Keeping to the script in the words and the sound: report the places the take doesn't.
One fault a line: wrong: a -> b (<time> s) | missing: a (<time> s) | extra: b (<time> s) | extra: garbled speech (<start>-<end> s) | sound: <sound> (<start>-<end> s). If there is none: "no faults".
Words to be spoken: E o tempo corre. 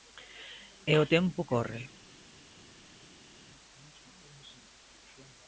no faults